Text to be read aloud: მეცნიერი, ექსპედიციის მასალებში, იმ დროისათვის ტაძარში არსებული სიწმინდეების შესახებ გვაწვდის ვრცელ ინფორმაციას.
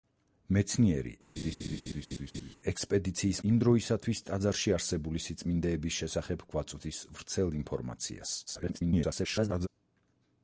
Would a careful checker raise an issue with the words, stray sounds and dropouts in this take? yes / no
yes